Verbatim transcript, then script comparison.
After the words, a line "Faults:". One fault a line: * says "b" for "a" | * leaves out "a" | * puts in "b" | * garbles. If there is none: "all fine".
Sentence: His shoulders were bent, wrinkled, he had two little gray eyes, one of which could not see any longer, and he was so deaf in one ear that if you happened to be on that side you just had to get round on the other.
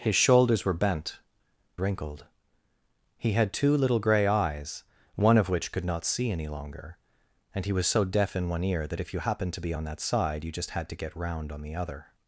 His shoulders were bent, wrinkled, he had two little gray eyes, one of which could not see any longer, and he was so deaf in one ear that if you happened to be on that side you just had to get round on the other.
Faults:
all fine